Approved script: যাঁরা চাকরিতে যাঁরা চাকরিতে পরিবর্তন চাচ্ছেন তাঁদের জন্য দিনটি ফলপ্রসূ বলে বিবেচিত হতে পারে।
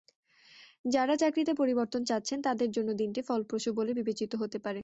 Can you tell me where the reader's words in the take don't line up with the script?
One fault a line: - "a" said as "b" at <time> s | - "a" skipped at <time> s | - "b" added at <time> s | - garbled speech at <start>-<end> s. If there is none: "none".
- "যাঁরা চাকরিতে" skipped at 1.5 s